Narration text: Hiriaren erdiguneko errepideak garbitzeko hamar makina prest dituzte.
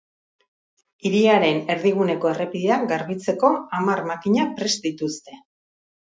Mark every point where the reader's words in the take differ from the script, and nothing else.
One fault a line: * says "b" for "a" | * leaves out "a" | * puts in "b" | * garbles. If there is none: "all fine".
all fine